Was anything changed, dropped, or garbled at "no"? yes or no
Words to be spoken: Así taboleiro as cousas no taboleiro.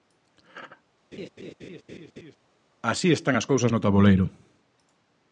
no